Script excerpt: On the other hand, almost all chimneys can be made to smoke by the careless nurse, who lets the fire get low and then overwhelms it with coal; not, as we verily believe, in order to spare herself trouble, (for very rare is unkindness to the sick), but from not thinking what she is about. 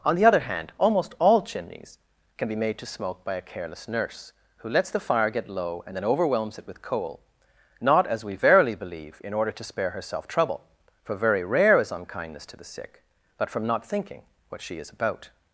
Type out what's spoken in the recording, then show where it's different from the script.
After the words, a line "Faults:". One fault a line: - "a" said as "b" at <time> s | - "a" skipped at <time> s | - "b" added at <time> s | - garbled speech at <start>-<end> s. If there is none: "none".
On the other hand, almost all chimneys can be made to smoke by a careless nurse, who lets the fire get low and then overwhelms it with coal; not, as we verily believe, in order to spare herself trouble, (for very rare is unkindness to the sick), but from not thinking what she is about.
Faults:
- "the" said as "a" at 3.4 s